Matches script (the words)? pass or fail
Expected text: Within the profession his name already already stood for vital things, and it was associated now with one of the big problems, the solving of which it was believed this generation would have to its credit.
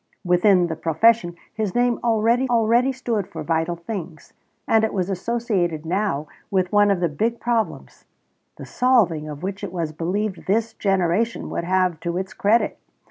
pass